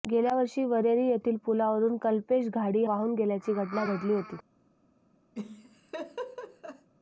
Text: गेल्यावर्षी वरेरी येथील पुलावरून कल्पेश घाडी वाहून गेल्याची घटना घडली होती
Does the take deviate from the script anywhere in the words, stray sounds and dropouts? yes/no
yes